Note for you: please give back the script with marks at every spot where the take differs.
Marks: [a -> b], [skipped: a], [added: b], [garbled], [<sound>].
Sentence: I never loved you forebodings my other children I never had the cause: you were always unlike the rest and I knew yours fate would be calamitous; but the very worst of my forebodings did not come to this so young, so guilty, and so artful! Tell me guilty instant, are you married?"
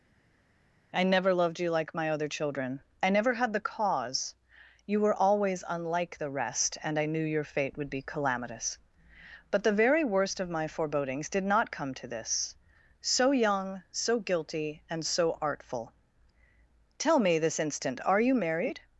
I never loved you [forebodings -> like] my other children I never had the cause: you were always unlike the rest and I knew [yours -> your] fate would be calamitous; but the very worst of my forebodings did not come to this so young, so guilty, and so artful! Tell me [guilty -> this] instant, are you married?"